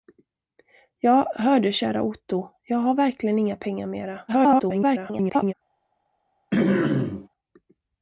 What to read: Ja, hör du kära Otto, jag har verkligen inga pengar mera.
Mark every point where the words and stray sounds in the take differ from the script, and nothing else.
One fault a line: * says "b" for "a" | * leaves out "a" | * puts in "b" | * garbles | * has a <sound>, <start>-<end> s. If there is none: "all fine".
* garbles
* has a throat clearing, 6.5-7.3 s